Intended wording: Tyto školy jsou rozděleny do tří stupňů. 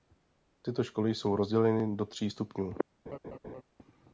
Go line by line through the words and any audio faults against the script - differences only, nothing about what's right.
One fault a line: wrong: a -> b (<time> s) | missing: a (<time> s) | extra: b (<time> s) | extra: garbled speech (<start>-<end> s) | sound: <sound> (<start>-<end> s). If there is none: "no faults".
sound: laugh (3.1-3.6 s)